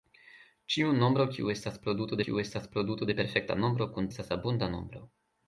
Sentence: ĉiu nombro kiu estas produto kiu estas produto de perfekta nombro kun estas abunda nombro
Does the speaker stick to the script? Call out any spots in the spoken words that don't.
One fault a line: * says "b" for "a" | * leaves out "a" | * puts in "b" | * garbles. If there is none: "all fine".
all fine